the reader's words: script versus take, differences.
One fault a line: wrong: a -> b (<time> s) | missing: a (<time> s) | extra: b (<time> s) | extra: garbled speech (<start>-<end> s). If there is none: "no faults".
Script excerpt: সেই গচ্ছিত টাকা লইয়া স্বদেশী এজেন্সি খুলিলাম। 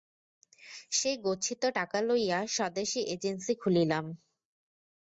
no faults